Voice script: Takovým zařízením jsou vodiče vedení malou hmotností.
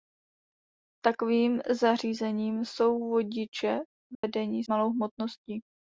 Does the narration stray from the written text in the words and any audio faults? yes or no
yes